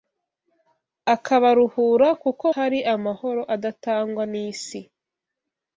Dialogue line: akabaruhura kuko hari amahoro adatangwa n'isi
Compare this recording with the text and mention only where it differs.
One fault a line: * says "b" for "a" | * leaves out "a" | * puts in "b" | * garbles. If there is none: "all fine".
all fine